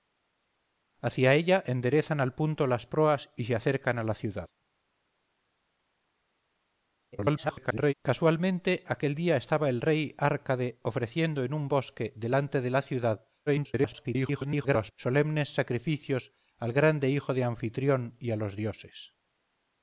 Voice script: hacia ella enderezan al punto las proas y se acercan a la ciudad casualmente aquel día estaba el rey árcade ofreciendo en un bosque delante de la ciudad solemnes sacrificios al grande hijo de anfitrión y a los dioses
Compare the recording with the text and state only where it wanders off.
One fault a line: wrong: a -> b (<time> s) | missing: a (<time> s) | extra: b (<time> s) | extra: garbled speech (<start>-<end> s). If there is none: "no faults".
extra: garbled speech (7.1-7.9 s)
extra: garbled speech (13.5-14.9 s)